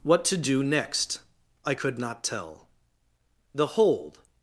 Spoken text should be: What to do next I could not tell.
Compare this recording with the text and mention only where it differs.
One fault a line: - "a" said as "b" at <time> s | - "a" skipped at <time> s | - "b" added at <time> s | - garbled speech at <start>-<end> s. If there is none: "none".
- "The hold" added at 3.5 s